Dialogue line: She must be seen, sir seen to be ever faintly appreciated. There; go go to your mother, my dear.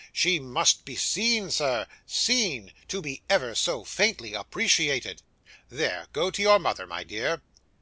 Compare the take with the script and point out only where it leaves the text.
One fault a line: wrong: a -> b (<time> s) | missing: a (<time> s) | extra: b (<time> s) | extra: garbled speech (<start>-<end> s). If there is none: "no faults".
extra: so (3.5 s)
missing: go (6.3 s)